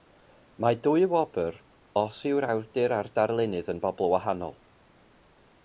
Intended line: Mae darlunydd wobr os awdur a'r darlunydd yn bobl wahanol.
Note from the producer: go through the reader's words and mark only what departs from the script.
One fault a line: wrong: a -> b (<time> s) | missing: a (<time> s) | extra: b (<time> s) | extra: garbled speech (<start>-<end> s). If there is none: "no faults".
wrong: darlunydd -> dwy (0.8 s)
extra: yw'r (2.3 s)